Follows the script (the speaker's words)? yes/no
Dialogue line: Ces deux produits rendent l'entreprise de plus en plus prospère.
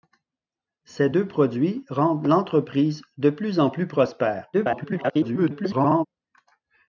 no